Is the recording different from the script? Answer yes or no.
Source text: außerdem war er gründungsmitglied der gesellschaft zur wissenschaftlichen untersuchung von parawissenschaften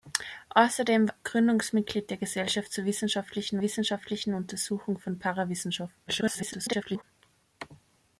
yes